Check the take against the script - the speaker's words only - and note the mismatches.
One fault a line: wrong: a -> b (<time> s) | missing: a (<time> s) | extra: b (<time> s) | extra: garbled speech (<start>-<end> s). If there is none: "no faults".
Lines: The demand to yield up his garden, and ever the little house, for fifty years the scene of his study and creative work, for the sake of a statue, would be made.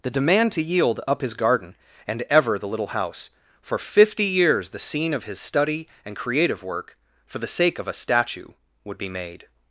no faults